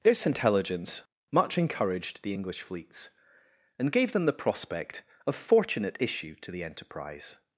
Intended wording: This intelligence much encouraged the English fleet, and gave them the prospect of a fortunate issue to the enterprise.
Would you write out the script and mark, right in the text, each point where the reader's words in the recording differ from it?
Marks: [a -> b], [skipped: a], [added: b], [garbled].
This intelligence much encouraged the English [fleet, -> fleets] and gave them the prospect of [skipped: a] fortunate issue to the enterprise.